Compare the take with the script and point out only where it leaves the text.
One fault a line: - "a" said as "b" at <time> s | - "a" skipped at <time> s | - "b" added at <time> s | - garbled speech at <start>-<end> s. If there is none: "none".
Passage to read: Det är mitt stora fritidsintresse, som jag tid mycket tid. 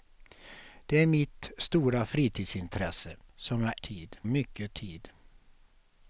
none